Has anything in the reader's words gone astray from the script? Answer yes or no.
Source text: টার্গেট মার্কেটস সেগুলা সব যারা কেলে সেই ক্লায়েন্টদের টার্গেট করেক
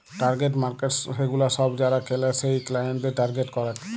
no